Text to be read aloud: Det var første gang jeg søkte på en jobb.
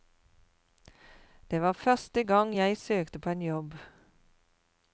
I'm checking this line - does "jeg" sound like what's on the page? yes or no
yes